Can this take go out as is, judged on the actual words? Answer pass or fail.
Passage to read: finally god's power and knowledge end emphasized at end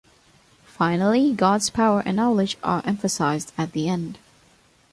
fail